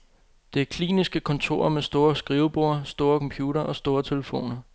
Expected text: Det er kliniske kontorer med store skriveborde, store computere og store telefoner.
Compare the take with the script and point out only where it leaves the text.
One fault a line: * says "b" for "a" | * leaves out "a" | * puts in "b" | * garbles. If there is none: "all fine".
all fine